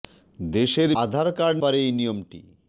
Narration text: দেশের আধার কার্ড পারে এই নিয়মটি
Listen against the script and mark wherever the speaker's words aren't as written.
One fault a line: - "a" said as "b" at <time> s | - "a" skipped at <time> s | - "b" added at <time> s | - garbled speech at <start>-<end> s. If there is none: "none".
none